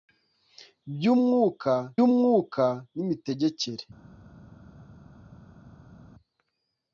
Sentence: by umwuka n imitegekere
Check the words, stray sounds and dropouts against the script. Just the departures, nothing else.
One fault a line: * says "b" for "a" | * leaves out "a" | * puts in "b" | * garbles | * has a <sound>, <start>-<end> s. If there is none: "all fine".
* puts in "umwuka"